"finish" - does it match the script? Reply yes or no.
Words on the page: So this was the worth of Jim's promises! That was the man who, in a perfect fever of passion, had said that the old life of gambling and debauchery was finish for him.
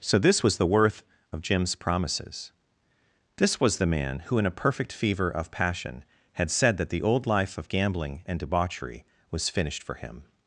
no